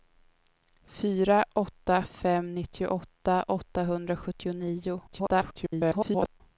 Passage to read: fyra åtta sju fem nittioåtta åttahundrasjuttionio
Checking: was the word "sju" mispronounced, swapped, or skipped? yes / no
yes